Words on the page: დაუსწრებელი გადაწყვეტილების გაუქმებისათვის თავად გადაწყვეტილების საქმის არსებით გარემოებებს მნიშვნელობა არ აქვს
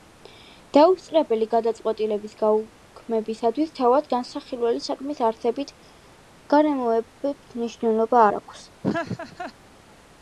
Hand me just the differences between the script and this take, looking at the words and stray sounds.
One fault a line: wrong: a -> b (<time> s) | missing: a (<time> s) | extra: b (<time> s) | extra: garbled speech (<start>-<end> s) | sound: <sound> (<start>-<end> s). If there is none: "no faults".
wrong: გადაწყვეტილების -> განსახილველი (4.2 s)
sound: laugh (8.8-9.5 s)